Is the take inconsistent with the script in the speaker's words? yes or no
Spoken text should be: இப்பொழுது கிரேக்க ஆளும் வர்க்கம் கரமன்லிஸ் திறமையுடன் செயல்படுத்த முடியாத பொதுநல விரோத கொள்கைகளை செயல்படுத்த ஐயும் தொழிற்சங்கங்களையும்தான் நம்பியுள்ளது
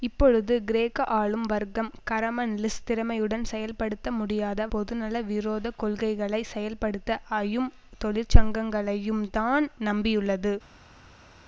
no